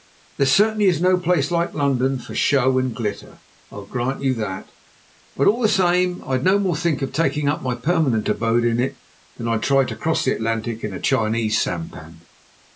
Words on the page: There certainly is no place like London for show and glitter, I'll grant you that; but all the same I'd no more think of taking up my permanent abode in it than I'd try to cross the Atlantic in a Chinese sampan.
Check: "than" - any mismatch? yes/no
no